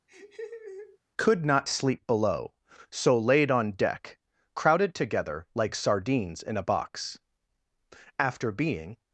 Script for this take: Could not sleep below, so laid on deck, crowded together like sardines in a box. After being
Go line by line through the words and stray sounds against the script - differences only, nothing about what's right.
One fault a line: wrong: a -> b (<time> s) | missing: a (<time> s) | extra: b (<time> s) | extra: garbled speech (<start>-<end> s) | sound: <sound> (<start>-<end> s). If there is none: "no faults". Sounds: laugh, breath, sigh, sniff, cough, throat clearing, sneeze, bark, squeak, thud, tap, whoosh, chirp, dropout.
sound: laugh (0.1-1.0 s)